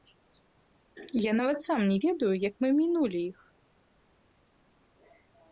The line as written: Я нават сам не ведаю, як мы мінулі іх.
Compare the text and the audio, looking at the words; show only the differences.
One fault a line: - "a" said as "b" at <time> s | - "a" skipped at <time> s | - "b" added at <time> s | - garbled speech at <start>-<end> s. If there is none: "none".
none